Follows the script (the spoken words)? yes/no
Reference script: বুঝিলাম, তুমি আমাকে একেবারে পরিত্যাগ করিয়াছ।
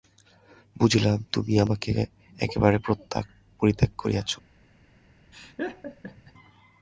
yes